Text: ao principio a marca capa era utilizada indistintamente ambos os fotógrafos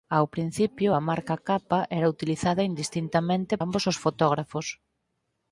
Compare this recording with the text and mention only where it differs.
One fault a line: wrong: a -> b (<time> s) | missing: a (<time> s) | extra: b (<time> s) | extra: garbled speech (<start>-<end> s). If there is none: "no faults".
no faults